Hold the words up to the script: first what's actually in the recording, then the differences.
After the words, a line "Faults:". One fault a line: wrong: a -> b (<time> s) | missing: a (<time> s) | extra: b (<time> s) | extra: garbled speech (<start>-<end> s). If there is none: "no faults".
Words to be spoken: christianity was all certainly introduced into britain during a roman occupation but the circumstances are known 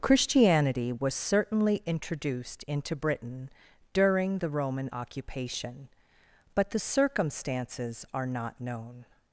christianity was certainly introduced into britain during the roman occupation but the circumstances are not known
Faults:
missing: all (1.1 s)
wrong: a -> the (4.4 s)
extra: not (8.3 s)